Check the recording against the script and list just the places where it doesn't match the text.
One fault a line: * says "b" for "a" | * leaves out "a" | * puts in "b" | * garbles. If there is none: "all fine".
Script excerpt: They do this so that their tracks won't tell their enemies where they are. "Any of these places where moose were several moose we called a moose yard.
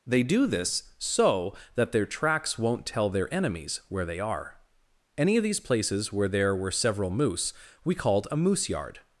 * says "there" for "moose"